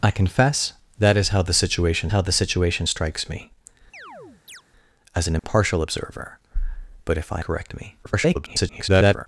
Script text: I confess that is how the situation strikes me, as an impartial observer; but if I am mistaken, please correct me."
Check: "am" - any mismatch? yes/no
yes